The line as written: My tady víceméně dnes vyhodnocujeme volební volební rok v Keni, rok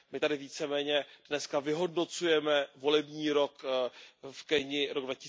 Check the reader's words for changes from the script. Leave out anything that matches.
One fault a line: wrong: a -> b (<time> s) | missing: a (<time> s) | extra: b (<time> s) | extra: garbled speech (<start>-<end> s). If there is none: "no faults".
missing: volební (3.3 s)